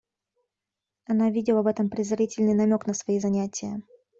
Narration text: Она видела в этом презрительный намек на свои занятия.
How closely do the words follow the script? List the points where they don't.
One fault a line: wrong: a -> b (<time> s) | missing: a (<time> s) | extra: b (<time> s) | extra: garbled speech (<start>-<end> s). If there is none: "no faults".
no faults